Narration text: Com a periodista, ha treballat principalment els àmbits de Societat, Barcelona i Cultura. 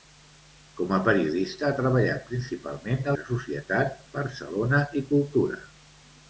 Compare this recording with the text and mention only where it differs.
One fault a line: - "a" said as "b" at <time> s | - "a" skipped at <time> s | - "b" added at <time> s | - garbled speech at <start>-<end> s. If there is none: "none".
- "els àmbits" skipped at 3.1 s